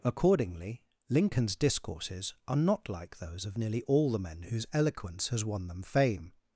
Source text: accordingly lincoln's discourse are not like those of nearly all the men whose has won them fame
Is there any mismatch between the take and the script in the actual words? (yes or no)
yes